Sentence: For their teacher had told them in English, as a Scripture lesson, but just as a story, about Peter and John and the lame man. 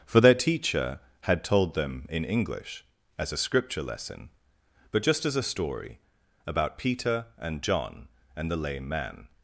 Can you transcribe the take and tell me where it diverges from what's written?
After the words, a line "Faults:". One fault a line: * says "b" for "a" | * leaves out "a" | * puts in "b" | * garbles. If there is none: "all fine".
For their teacher had told them in English, as a Scripture lesson, but just as a story, about Peter and John and the lame man.
Faults:
all fine